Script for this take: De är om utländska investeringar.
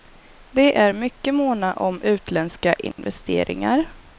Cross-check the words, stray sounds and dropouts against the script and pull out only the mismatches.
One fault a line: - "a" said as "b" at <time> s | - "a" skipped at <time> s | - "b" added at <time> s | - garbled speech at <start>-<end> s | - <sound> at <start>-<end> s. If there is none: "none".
- "mycket måna" added at 0.9 s
- dropout at 2.9-3.0 s